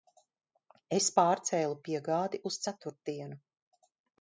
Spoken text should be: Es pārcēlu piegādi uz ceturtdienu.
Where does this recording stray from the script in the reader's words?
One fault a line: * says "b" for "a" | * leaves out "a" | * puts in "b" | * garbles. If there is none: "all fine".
all fine